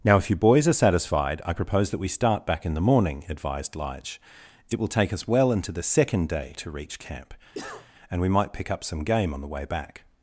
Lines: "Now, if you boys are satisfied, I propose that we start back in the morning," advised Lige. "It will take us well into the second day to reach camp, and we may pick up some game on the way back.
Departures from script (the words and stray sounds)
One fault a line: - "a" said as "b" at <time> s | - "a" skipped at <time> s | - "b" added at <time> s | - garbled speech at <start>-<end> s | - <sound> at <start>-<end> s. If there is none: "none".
- cough at 7.5-7.9 s
- "may" said as "might" at 8.3 s